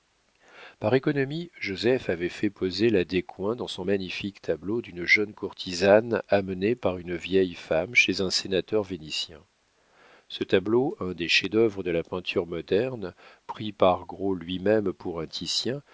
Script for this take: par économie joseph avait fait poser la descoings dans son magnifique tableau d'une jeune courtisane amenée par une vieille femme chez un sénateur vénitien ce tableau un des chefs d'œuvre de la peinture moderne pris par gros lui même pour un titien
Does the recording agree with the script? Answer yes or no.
yes